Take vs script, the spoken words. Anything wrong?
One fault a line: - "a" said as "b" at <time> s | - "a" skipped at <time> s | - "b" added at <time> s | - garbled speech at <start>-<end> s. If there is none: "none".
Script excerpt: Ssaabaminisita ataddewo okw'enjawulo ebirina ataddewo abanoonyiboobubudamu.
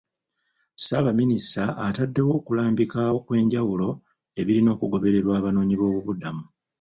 - "okulambika" added at 2.4 s
- "ataddewo" said as "okugobererwa" at 4.8 s